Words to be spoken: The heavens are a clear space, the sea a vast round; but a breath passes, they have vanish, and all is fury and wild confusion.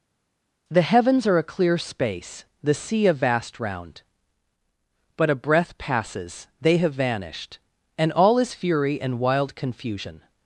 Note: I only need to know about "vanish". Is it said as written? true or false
false